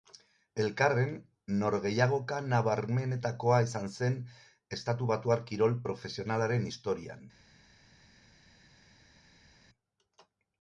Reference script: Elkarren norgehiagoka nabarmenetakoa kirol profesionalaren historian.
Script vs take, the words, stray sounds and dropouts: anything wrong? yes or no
yes